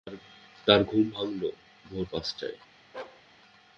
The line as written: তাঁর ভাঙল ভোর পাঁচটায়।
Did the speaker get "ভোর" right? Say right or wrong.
right